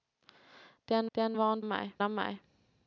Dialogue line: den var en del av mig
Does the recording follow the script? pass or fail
fail